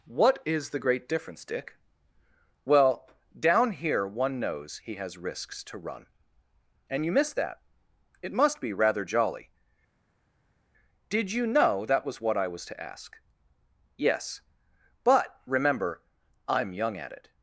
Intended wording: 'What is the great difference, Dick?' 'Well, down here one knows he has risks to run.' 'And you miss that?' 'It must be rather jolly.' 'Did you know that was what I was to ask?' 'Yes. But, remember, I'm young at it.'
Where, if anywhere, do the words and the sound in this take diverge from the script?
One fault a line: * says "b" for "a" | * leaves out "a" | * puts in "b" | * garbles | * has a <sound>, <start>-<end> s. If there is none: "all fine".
all fine